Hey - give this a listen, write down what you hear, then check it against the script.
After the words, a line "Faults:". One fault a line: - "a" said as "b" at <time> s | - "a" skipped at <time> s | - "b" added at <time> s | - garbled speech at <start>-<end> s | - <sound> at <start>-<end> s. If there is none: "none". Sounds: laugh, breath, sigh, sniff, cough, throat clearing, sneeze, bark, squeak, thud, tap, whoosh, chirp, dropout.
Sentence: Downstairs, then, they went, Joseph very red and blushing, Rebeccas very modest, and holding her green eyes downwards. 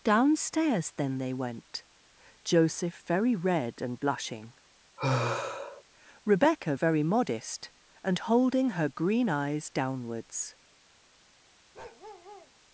Downstairs, then, they went, Joseph very red and blushing, Rebecca very modest, and holding her green eyes downwards.
Faults:
- sigh at 5.0-5.8 s
- "Rebeccas" said as "Rebecca" at 6.2 s
- bark at 11.7-12.5 s